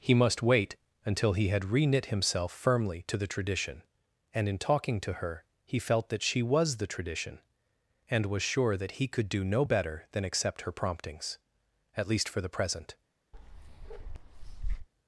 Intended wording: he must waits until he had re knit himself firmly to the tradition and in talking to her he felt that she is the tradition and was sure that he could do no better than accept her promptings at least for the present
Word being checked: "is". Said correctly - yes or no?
no